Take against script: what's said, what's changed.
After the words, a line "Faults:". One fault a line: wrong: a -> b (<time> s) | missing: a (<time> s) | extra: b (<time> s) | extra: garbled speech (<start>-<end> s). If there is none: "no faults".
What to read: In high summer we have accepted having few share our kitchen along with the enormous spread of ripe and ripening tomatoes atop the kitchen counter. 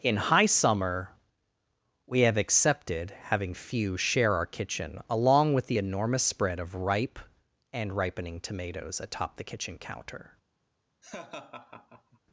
In high summer we have accepted having few share our kitchen along with the enormous spread of ripe and ripening tomatoes atop the kitchen counter.
Faults:
no faults